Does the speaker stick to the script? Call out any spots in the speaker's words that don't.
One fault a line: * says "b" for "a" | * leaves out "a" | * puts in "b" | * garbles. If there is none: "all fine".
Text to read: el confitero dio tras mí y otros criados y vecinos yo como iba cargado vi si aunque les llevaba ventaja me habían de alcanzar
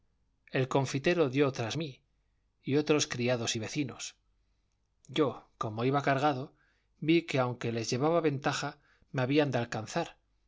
* says "que" for "si"